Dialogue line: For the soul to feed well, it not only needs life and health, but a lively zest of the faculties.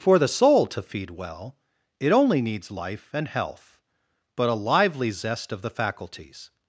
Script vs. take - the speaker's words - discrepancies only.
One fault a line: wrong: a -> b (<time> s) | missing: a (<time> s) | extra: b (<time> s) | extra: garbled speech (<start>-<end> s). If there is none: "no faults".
missing: not (2.1 s)